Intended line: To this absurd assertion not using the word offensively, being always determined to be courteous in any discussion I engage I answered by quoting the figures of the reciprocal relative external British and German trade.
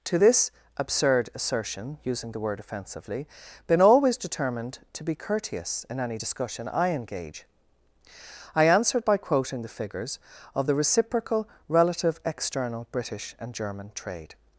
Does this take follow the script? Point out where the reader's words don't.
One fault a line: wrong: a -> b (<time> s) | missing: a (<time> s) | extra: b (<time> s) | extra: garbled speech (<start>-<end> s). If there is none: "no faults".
missing: not (2.0 s)
wrong: being -> been (3.7 s)